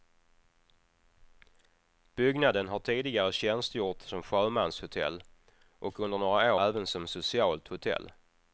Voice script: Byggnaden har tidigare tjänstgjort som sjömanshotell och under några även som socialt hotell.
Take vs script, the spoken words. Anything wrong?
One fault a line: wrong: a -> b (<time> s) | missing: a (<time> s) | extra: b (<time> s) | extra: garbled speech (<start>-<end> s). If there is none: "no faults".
no faults